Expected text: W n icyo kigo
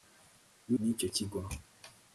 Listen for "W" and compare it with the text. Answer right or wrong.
right